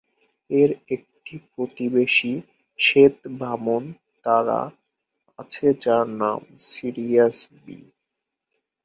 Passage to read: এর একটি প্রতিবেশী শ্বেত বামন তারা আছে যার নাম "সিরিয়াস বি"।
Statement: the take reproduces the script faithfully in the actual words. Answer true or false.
true